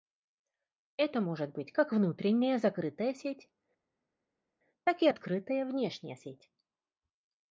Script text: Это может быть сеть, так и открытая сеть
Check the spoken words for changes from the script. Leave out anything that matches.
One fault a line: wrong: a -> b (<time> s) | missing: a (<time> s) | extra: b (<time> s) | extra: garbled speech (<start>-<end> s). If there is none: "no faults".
extra: как внутренняя закрытая (1.7 s)
extra: внешняя (5.6 s)